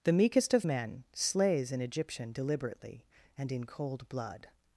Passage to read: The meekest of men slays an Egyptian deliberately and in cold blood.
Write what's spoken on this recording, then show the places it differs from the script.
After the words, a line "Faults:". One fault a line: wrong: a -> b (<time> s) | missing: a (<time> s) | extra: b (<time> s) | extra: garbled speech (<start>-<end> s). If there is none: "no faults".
The meekest of men slays an Egyptian deliberately and in cold blood.
Faults:
no faults